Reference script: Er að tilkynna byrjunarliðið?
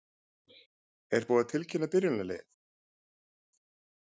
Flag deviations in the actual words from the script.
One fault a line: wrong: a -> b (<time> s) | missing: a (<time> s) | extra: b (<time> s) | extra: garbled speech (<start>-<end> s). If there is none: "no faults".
extra: búið (1.3 s)